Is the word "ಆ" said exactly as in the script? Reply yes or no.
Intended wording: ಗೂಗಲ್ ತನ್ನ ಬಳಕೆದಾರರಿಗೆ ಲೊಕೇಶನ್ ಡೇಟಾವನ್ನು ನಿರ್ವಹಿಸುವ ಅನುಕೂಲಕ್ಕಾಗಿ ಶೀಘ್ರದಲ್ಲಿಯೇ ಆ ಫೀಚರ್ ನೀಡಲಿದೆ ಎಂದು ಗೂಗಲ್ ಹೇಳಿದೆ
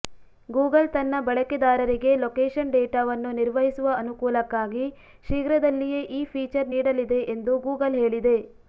no